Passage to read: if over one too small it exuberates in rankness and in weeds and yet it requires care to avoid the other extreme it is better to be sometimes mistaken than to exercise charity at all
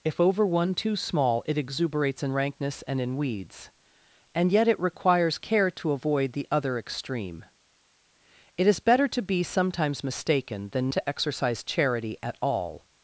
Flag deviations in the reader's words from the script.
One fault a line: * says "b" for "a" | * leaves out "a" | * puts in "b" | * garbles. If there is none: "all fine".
all fine